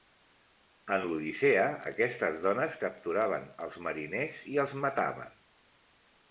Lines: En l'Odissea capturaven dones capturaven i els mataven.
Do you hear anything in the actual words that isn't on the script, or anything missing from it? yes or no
yes